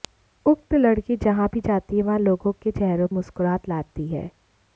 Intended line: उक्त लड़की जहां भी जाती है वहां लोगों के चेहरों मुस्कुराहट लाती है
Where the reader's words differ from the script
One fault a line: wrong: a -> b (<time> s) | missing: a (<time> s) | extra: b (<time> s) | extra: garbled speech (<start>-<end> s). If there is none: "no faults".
no faults